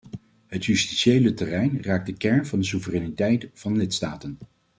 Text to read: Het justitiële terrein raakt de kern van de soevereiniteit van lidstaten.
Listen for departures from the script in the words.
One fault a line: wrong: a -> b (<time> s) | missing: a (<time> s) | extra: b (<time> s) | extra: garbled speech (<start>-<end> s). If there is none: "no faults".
no faults